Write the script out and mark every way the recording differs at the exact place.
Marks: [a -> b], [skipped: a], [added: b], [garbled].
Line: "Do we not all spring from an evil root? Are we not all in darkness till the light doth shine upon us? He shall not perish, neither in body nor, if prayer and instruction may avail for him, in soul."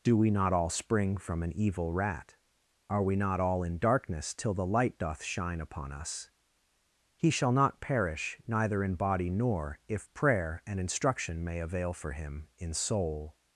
"Do we not all spring from an evil [root? -> rat] Are we not all in darkness till the light doth shine upon us? He shall not perish, neither in body nor, if prayer and instruction may avail for him, in soul."